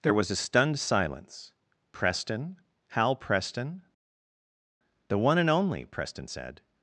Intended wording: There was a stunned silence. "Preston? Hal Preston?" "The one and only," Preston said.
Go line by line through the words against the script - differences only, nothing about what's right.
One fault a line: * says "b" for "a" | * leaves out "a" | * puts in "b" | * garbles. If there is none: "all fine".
all fine